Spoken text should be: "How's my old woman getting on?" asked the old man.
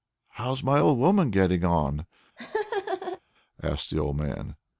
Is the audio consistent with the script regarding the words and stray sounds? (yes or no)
no